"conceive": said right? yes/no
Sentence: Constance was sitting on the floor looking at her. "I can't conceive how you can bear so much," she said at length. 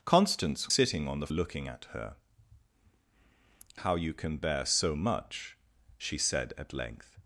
no